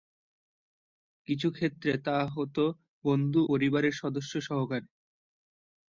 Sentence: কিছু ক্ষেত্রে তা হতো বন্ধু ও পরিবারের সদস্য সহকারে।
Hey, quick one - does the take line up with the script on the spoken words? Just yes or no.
no